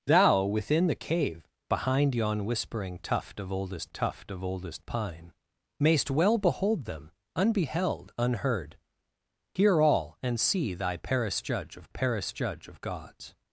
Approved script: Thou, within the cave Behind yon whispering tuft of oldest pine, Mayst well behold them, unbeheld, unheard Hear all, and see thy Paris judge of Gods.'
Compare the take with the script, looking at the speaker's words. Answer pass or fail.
fail